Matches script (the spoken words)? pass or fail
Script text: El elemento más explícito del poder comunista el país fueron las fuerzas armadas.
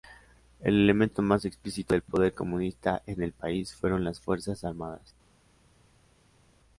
fail